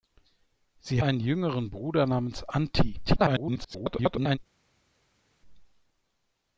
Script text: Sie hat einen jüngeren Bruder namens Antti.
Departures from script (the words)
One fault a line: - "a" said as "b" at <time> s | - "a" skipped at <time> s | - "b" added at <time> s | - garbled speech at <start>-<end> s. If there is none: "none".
- "hat" skipped at 1.0 s
- garbled speech at 3.1-4.4 s